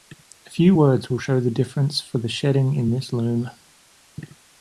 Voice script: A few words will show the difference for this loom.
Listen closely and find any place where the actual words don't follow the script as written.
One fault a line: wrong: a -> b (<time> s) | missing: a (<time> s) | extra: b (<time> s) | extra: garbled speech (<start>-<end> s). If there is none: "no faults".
extra: the shedding in (2.2 s)